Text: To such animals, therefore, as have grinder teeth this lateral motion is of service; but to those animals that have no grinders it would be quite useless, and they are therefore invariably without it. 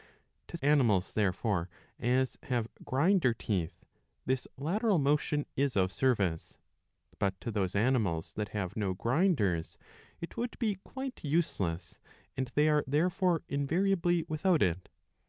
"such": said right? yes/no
no